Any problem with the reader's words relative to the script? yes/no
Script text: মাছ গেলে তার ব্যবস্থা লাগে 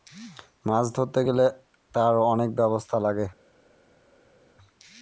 yes